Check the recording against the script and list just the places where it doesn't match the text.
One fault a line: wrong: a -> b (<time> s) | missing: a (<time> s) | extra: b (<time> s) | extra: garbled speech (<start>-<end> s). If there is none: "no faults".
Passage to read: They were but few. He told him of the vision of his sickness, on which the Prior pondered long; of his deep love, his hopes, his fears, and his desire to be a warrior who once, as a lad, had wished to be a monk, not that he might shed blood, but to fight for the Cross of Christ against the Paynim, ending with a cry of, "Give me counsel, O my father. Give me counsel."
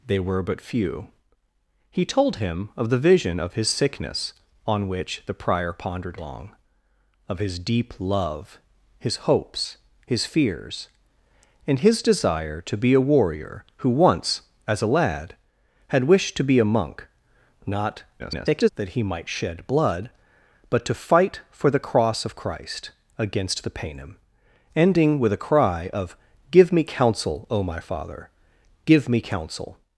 extra: garbled speech (18.2-18.7 s)